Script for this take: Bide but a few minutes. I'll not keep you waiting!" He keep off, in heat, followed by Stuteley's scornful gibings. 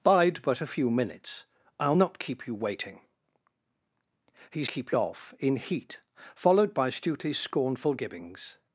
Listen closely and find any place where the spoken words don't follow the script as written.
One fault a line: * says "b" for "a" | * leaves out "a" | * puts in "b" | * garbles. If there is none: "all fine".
all fine